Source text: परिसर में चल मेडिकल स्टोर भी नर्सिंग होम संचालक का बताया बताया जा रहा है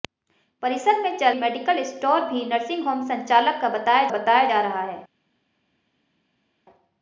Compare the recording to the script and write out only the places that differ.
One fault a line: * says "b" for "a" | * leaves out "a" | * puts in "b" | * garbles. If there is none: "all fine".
all fine